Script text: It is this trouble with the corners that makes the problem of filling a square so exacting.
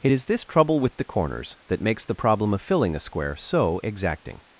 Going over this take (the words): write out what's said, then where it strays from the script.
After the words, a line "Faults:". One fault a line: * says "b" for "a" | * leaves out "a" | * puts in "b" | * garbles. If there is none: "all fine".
It is this trouble with the corners that makes the problem of filling a square so exacting.
Faults:
all fine